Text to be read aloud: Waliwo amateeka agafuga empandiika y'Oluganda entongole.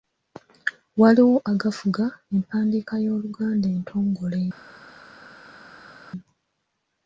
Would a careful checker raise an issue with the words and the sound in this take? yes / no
yes